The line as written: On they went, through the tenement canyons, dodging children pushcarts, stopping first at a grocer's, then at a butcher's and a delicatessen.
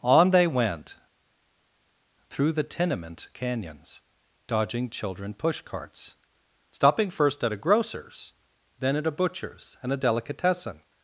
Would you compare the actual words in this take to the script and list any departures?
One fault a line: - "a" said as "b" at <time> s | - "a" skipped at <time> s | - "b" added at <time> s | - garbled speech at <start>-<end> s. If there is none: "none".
none